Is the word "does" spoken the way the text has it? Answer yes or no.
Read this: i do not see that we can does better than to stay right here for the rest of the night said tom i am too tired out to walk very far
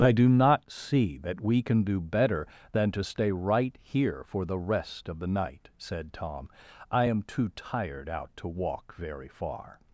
no